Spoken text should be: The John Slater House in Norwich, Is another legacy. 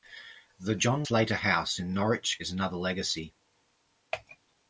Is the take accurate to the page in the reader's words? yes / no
yes